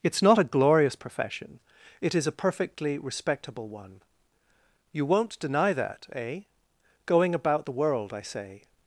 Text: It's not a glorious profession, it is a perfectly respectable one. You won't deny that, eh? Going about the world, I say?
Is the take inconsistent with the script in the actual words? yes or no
no